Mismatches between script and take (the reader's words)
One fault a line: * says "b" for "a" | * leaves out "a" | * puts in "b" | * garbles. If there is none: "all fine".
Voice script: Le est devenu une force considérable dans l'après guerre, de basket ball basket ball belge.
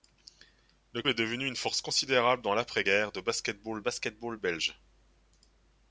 all fine